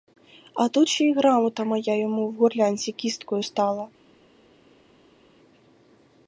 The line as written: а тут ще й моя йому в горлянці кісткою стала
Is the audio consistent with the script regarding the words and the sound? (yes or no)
no